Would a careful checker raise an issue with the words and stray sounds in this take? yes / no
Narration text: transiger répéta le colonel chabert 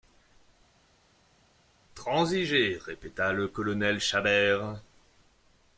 no